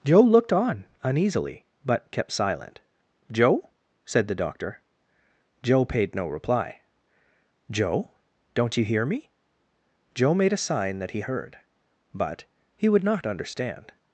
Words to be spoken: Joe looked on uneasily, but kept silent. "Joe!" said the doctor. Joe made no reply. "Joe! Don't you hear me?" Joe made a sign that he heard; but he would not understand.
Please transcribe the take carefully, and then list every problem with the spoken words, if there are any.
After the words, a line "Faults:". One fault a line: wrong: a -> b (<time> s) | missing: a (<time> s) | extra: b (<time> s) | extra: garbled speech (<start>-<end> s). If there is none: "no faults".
Joe looked on uneasily, but kept silent. "Joe!" said the doctor. Joe paid no reply. "Joe! Don't you hear me?" Joe made a sign that he heard; but he would not understand.
Faults:
wrong: made -> paid (5.8 s)